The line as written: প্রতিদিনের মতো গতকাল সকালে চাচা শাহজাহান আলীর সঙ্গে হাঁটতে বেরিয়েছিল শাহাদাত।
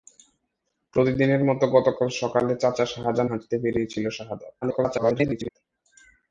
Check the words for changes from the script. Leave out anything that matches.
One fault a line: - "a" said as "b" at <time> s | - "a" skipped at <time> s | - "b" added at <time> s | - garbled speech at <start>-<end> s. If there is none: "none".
- "আলীর সঙ্গে" skipped at 3.3 s
- garbled speech at 4.6-5.5 s